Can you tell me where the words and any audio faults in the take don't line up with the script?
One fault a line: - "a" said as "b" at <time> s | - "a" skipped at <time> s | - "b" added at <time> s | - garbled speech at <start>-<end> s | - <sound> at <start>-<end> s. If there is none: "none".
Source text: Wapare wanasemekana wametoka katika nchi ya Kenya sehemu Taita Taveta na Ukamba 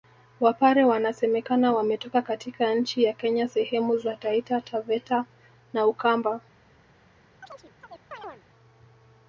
- "za" added at 4.0 s
- chirp at 7.4-8.4 s